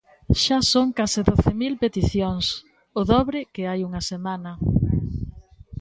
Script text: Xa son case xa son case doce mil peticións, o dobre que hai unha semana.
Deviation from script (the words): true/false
true